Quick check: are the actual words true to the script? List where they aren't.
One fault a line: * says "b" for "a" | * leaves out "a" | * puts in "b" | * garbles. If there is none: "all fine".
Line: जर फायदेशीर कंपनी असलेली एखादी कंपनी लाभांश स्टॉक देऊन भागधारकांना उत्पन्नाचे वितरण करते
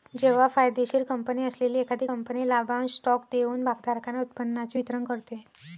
* says "जेव्हा" for "जर"